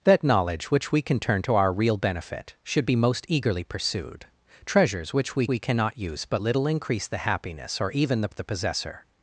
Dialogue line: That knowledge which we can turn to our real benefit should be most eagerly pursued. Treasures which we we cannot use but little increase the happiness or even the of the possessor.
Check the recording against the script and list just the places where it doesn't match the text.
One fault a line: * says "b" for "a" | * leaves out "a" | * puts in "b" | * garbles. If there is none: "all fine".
all fine